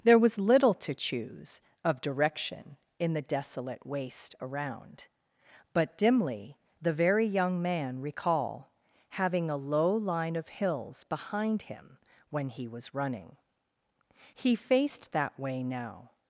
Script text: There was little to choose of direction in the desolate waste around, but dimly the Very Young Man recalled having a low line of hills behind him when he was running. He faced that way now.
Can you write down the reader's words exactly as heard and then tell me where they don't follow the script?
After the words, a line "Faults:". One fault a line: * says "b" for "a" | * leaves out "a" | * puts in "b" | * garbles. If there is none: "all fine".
There was little to choose of direction in the desolate waste around, but dimly the Very Young Man recall having a low line of hills behind him when he was running. He faced that way now.
Faults:
* says "recall" for "recalled"